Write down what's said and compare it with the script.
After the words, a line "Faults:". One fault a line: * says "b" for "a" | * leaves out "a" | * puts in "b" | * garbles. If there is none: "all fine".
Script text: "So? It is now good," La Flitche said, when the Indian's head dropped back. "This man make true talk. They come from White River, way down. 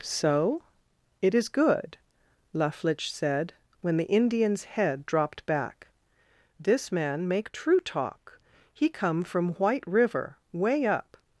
"So? It is good," La Flitche said, when the Indian's head dropped back. "This man make true talk. He come from White River, way up.
Faults:
* leaves out "now"
* says "He" for "They"
* says "up" for "down"